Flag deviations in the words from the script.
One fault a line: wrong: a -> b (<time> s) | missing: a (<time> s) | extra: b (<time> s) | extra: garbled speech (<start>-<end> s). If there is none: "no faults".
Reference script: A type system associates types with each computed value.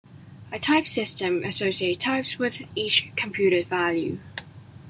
no faults